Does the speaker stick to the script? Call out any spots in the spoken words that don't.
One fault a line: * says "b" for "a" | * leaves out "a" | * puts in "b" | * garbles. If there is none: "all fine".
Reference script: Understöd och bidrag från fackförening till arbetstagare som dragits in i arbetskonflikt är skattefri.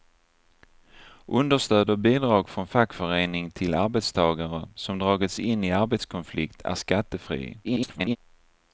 * garbles